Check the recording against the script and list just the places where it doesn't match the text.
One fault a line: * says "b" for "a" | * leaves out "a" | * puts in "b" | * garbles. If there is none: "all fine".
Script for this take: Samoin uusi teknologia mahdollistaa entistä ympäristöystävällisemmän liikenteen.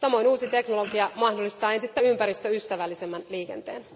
all fine